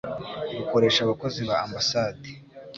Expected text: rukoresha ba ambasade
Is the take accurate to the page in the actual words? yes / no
no